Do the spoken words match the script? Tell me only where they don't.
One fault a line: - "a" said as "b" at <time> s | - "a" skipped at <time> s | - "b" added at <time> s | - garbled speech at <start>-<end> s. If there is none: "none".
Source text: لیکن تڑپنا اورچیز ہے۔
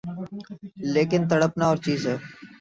none